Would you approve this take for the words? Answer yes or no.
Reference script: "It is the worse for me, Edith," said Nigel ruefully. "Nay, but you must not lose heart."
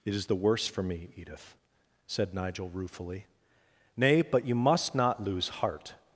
yes